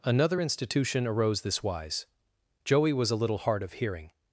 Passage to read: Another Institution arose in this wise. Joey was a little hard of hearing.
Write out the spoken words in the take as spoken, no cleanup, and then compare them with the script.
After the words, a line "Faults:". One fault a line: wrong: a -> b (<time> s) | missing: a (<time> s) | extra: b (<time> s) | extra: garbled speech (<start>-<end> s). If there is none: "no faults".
Another Institution arose this wise. Joey was a little hard of hearing.
Faults:
missing: in (1.4 s)